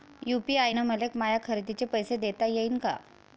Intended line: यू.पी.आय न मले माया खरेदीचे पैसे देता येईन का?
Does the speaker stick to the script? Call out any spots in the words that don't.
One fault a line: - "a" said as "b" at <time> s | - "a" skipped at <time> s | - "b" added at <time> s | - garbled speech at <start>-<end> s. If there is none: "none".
none